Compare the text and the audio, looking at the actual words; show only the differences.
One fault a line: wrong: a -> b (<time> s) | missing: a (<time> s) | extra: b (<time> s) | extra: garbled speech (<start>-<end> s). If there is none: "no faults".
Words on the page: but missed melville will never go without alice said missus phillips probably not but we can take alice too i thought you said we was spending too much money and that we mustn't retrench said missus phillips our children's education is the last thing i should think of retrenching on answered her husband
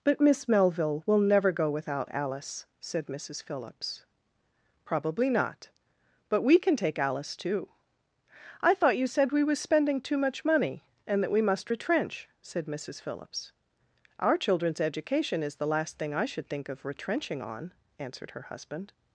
wrong: missed -> miss (0.2 s)
wrong: mustn't -> must (11.4 s)